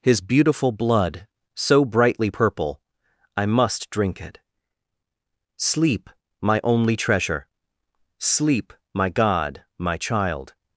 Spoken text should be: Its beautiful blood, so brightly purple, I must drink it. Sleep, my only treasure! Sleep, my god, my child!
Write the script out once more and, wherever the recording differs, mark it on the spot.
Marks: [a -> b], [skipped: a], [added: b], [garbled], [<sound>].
[Its -> His] beautiful blood, so brightly purple, I must drink it. Sleep, my only treasure! Sleep, my god, my child!